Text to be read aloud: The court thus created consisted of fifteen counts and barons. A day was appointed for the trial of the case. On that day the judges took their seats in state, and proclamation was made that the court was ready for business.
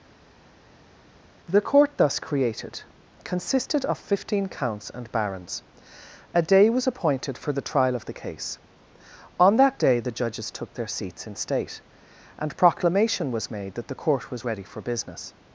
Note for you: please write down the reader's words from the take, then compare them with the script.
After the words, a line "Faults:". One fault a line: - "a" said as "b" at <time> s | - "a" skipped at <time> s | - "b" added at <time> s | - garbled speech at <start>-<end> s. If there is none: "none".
The court thus created consisted of fifteen counts and barons. A day was appointed for the trial of the case. On that day the judges took their seats in state, and proclamation was made that the court was ready for business.
Faults:
none